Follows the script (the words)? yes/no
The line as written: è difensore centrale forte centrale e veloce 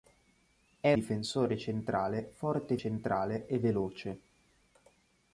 yes